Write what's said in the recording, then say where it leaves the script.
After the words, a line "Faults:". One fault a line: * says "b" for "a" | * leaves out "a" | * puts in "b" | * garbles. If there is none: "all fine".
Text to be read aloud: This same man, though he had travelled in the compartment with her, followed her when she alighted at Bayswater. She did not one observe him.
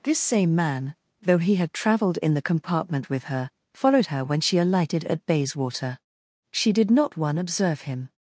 This same man, though he had travelled in the compartment with her, followed her when she alighted at Bayswater. She did not one observe him.
Faults:
all fine